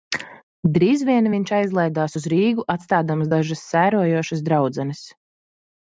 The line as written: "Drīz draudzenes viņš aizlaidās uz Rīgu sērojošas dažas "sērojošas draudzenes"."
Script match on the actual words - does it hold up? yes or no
no